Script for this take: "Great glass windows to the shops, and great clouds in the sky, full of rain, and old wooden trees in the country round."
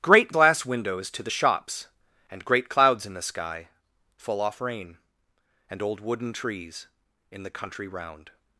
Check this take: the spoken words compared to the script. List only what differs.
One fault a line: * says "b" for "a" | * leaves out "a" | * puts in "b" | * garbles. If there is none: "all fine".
* says "off" for "of"